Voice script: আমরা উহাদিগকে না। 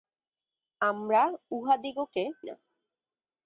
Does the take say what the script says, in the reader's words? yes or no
yes